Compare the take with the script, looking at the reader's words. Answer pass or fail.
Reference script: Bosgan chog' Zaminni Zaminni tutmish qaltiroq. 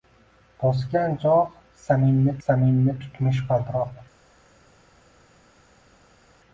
pass